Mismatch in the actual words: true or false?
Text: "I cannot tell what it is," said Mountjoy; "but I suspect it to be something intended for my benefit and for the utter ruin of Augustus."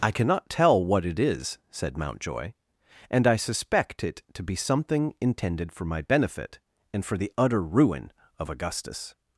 true